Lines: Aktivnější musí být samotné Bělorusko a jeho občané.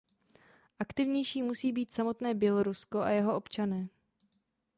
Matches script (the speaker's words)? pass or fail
pass